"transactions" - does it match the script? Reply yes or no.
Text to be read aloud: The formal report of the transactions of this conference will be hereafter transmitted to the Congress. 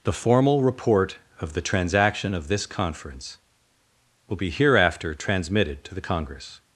no